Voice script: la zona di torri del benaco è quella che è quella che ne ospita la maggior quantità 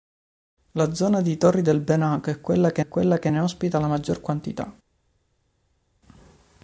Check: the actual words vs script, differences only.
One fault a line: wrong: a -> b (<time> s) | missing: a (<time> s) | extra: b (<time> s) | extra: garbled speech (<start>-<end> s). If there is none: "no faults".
no faults